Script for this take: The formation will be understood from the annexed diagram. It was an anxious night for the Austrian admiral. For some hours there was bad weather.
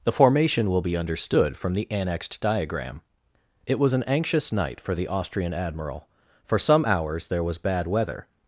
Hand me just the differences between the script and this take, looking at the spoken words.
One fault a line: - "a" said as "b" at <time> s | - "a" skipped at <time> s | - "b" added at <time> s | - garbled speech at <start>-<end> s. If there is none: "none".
none